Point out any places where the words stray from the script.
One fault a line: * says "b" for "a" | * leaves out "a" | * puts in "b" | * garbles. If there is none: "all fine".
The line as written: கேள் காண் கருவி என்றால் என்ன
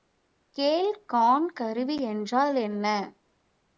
all fine